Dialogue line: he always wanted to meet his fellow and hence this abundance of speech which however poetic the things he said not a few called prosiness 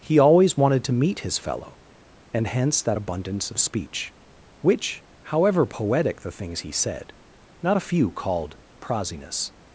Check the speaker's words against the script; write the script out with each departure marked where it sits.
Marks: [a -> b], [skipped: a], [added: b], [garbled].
he always wanted to meet his fellow and hence [this -> that] abundance of speech which however poetic the things he said not a few called prosiness